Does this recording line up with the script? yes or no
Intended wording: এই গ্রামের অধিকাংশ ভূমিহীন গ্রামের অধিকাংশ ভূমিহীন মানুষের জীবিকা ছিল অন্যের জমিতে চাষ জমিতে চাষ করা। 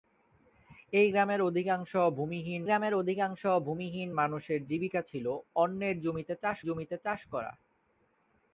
yes